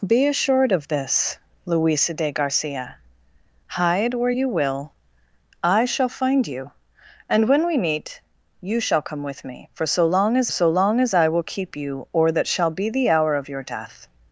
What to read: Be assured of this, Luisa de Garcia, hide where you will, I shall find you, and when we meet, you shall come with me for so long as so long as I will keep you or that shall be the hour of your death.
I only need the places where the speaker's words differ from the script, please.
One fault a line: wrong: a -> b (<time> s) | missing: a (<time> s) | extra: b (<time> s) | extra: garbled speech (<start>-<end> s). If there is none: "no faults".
no faults